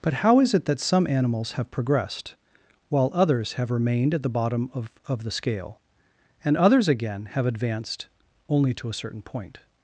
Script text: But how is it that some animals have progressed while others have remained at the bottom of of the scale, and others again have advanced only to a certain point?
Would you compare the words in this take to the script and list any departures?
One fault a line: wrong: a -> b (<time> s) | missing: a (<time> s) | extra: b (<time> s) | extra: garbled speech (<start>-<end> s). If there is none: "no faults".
no faults